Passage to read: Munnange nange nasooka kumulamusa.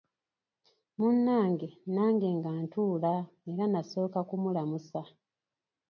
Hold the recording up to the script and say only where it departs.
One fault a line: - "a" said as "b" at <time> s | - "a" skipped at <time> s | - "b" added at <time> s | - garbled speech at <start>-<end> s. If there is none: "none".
- "nga ntuula era" added at 2.4 s